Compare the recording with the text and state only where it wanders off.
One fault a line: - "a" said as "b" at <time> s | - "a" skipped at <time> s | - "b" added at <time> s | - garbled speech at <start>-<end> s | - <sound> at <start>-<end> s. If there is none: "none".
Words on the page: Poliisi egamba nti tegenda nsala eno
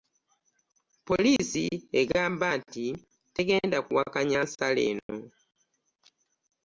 - dropout at 1.4-1.4 s
- "kuwakanya" added at 3.9 s
- dropout at 5.0-5.1 s